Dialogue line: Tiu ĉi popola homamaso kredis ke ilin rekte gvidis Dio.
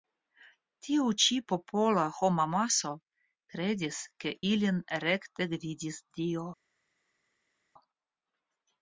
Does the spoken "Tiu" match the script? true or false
true